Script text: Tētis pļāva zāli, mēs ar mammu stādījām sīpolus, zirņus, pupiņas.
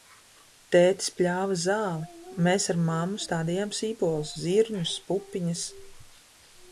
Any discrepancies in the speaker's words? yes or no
no